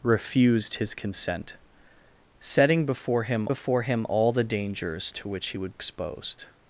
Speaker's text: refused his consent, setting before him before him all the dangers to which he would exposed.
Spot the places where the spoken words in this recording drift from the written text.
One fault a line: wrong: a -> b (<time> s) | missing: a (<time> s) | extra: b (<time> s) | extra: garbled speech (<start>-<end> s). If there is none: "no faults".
no faults